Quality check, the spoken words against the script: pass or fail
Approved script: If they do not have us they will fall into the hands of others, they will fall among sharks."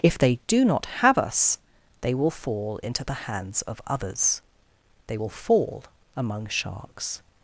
pass